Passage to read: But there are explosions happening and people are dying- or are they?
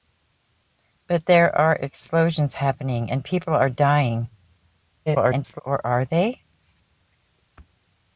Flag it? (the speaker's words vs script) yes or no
yes